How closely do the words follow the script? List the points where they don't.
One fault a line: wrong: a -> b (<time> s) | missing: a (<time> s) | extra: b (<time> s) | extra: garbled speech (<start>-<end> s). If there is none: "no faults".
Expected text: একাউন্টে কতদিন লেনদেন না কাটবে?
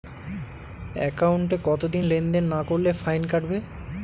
extra: করলে ফাইন (2.6 s)